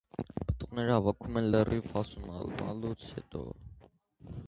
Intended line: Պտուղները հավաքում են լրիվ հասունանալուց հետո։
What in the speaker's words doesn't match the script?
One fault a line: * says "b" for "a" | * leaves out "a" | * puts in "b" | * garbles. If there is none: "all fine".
all fine